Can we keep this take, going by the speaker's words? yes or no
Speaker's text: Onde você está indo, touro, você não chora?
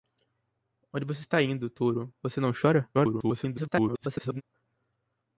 no